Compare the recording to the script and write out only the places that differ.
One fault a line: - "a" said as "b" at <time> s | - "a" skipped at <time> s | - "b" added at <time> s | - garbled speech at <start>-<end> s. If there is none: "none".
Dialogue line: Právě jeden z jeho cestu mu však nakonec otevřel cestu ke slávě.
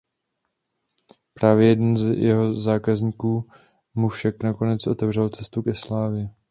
- "cestu" said as "zákazníků" at 2.5 s